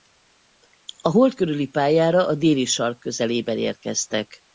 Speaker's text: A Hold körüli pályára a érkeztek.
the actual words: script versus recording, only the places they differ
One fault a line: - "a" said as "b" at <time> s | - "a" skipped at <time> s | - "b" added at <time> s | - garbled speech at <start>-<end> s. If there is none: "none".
- "déli sark közelében" added at 2.3 s